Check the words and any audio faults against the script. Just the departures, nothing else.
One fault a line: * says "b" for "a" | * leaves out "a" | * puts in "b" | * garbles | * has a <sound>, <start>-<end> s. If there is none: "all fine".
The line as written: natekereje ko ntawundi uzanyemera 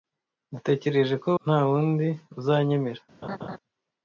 * has a laugh, 3.2-3.6 s